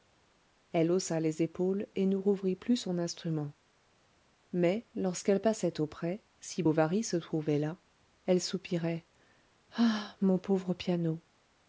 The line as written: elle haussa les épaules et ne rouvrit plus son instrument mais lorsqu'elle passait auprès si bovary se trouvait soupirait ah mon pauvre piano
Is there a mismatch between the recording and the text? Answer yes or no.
yes